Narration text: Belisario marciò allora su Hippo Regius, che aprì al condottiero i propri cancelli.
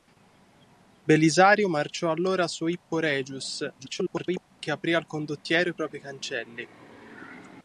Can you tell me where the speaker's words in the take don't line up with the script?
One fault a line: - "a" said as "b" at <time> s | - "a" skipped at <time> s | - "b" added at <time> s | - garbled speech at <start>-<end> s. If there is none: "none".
- garbled speech at 3.8-4.5 s